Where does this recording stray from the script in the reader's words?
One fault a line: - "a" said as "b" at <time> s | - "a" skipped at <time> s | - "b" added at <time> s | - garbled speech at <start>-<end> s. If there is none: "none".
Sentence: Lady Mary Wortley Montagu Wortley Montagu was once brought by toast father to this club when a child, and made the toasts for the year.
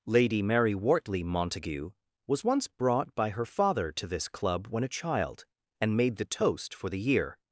- "Wortley Montagu" skipped at 1.9 s
- "toast" said as "her" at 3.3 s
- "toasts" said as "toast" at 6.2 s